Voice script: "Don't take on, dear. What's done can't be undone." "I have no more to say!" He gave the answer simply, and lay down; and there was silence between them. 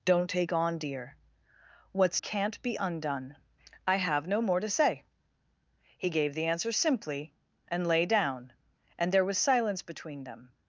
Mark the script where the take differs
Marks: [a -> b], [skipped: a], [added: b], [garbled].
"Don't take on, dear. What's [skipped: done] can't be undone." "I have no more to say!" He gave the answer simply, and lay down; and there was silence between them.